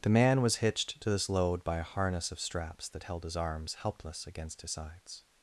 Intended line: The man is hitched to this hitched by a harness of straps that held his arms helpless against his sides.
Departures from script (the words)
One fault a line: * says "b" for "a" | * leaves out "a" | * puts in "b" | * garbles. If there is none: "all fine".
* says "was" for "is"
* says "load" for "hitched"